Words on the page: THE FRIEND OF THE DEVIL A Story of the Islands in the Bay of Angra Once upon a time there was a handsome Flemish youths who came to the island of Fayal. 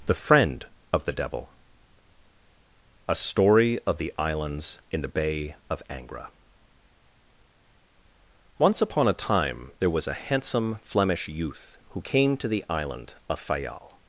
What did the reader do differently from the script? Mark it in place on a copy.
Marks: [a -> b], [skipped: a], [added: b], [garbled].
THE FRIEND OF THE DEVIL A Story of the Islands in the Bay of Angra Once upon a time there was a handsome Flemish [youths -> youth] who came to the island of Fayal.